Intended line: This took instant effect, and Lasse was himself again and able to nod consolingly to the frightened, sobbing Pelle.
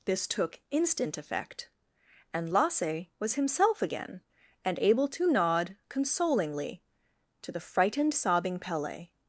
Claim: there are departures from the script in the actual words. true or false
false